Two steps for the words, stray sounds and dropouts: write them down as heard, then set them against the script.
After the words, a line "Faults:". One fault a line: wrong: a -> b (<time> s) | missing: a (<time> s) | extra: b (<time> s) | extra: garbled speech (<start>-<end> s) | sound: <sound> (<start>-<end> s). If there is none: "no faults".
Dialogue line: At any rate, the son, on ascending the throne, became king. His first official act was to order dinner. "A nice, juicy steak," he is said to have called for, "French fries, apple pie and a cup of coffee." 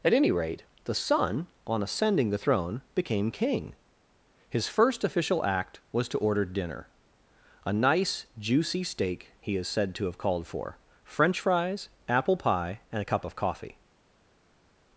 At any rate, the son, on ascending the throne, became king. His first official act was to order dinner. "A nice, juicy steak," he is said to have called for, "French fries, apple pie and a cup of coffee."
Faults:
no faults